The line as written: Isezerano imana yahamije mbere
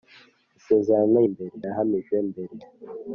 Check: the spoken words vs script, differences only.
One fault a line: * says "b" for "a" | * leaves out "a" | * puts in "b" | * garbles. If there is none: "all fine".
* says "mbere" for "imana"